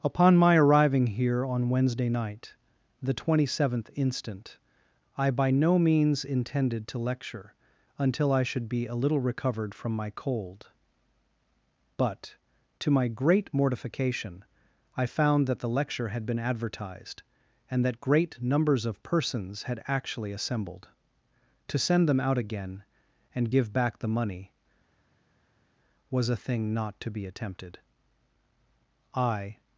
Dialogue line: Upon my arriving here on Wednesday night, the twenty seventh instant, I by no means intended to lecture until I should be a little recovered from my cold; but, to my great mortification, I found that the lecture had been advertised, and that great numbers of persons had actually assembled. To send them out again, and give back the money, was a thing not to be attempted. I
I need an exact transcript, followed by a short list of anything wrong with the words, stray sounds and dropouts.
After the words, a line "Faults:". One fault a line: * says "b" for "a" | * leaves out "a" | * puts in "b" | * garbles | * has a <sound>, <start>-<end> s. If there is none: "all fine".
Upon my arriving here on Wednesday night, the twenty seventh instant, I by no means intended to lecture until I should be a little recovered from my cold; but, to my great mortification, I found that the lecture had been advertised, and that great numbers of persons had actually assembled. To send them out again, and give back the money, was a thing not to be attempted. I
Faults:
all fine